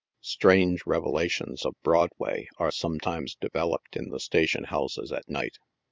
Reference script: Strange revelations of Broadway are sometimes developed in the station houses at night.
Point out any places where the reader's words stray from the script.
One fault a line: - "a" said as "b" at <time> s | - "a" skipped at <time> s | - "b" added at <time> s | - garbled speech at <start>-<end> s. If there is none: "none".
none